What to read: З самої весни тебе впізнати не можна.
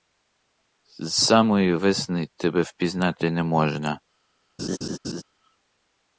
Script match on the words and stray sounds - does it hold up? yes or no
no